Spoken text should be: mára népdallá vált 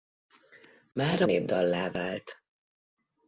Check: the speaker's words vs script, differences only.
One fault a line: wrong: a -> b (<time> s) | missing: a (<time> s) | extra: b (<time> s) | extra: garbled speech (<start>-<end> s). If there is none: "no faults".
no faults